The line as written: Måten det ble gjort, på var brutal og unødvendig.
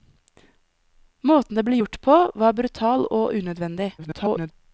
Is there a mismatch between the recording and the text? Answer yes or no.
yes